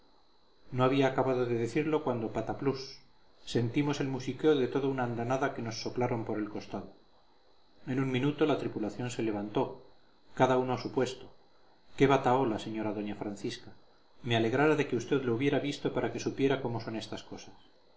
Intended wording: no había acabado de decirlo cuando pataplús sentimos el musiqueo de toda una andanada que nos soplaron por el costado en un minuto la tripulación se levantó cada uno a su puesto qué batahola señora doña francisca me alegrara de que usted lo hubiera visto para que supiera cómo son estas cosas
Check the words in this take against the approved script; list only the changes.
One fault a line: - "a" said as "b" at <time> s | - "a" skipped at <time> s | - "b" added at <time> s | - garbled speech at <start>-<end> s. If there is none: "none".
none